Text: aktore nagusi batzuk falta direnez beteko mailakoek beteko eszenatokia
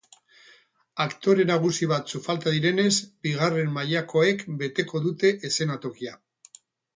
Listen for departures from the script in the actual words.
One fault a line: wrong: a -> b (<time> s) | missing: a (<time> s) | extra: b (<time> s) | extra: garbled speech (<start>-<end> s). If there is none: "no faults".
wrong: beteko -> bigarren (3.3 s)
extra: dute (5.1 s)